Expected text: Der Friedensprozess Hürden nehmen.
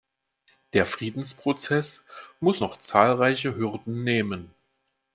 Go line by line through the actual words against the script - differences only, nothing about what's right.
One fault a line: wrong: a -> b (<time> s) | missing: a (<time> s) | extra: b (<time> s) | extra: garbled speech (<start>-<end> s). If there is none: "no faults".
extra: muss noch zahlreiche (2.4 s)